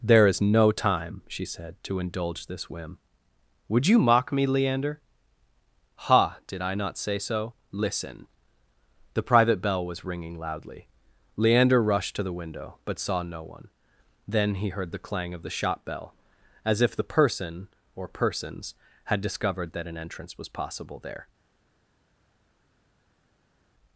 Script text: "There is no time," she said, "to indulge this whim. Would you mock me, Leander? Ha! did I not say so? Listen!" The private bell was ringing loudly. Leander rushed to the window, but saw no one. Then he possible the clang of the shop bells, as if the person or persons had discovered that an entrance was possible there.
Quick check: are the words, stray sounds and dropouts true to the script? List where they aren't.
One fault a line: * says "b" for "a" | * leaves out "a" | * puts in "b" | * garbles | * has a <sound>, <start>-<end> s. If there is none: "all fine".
* says "heard" for "possible"
* says "bell" for "bells"